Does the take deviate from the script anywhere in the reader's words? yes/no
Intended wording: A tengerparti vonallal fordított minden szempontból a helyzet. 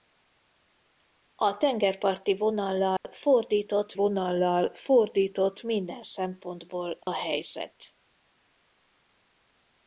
yes